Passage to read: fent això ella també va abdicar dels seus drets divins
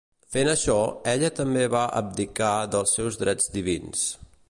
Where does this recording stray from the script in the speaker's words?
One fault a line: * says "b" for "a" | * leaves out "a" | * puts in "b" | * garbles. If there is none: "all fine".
all fine